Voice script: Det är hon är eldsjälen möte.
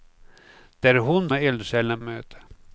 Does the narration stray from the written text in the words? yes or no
no